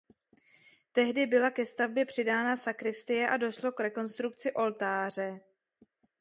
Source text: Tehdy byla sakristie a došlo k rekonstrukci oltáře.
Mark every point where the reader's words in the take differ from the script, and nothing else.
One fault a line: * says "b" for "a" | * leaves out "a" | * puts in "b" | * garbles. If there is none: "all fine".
* puts in "ke stavbě přidána"